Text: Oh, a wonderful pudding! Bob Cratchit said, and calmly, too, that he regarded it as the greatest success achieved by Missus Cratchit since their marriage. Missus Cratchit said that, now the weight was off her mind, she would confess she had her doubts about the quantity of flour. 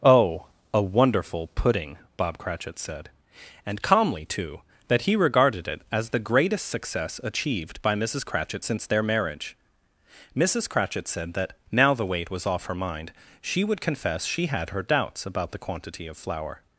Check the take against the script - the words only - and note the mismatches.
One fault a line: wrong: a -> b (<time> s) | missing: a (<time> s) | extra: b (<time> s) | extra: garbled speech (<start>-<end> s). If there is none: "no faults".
no faults